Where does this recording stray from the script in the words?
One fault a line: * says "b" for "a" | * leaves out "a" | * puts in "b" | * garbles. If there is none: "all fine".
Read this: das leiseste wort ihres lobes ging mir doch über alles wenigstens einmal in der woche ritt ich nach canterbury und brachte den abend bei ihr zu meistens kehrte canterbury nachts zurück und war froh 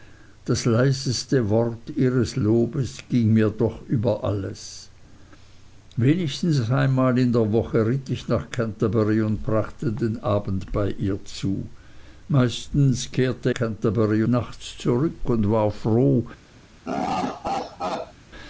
all fine